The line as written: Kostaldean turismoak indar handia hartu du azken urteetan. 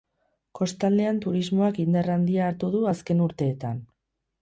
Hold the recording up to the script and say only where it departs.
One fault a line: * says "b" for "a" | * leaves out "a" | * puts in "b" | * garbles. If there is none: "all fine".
all fine